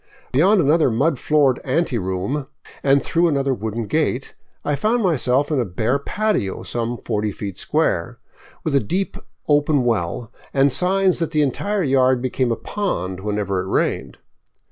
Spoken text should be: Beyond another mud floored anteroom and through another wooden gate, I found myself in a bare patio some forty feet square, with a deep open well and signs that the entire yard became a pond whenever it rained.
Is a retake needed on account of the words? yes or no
no